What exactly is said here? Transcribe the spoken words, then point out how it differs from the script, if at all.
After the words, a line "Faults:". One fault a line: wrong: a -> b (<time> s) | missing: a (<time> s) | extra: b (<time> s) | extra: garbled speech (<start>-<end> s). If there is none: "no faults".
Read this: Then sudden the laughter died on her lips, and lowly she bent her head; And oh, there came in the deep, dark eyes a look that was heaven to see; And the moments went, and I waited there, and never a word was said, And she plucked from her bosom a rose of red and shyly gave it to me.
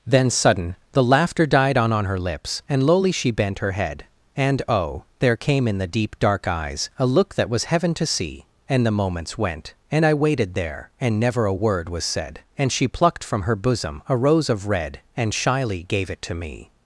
Then sudden the laughter died on on her lips, and lowly she bent her head; And oh, there came in the deep, dark eyes a look that was heaven to see; And the moments went, and I waited there, and never a word was said, And she plucked from her bosom a rose of red and shyly gave it to me.
Faults:
extra: on (1.9 s)